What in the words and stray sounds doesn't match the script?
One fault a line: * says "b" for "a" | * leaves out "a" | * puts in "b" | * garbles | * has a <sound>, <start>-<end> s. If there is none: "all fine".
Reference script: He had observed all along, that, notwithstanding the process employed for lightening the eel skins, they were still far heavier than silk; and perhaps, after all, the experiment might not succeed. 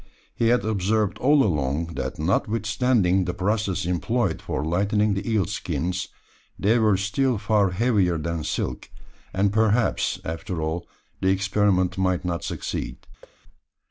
* has a thud, 13.2-13.4 s